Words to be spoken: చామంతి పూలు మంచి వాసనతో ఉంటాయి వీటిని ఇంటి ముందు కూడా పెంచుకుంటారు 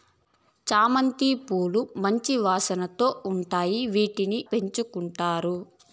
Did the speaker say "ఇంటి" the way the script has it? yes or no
no